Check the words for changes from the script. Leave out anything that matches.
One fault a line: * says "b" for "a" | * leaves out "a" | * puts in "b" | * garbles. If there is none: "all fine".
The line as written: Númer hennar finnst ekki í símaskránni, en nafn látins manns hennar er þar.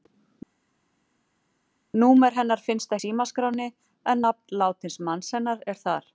* leaves out "ekki"